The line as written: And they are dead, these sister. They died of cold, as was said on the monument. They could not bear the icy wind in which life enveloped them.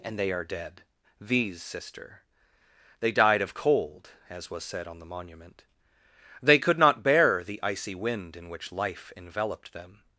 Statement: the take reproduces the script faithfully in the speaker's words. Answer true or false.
true